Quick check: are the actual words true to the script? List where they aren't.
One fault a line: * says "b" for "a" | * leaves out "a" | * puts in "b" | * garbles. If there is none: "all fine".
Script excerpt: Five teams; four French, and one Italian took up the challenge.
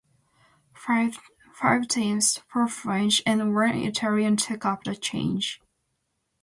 all fine